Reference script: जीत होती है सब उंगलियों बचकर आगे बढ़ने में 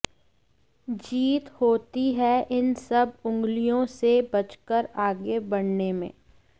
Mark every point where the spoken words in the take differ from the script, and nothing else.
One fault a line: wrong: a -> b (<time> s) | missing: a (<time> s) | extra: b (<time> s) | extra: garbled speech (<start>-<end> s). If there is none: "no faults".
extra: इन (2.6 s)
extra: से (4.0 s)